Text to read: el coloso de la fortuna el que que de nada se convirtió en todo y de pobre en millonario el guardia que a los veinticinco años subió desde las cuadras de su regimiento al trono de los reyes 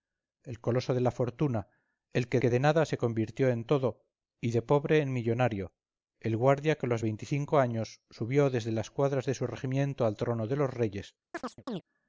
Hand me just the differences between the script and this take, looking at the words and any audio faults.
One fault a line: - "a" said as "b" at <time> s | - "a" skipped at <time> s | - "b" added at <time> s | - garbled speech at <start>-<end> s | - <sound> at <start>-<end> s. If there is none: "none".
- chirp at 11.3-11.8 s